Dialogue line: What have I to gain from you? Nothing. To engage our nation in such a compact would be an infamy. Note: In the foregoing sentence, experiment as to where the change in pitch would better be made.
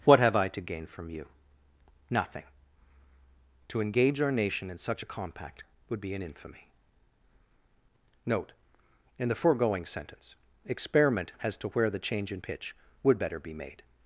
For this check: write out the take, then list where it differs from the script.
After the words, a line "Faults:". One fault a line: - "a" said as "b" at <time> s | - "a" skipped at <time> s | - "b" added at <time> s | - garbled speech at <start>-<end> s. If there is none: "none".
What have I to gain from you? Nothing. To engage our nation in such a compact would be an infamy. Note: In the foregoing sentence, experiment as to where the change in pitch would better be made.
Faults:
none